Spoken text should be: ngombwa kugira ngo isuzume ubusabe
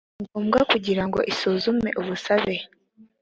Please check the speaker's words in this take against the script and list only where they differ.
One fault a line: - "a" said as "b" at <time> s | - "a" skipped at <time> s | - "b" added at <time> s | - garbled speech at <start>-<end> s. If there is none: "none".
none